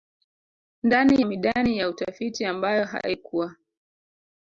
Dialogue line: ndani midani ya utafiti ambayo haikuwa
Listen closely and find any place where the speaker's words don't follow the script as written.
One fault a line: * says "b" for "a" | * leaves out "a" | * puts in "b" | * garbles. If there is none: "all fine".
all fine